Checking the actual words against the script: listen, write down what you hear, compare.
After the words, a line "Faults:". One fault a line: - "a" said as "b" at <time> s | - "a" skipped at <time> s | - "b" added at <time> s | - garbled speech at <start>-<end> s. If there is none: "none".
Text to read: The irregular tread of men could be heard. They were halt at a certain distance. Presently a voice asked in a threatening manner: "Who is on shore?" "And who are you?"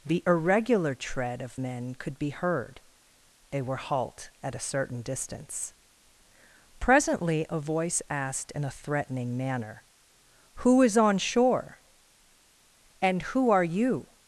The irregular tread of men could be heard. They were halt at a certain distance. Presently a voice asked in a threatening manner: "Who is on shore?" "And who are you?"
Faults:
none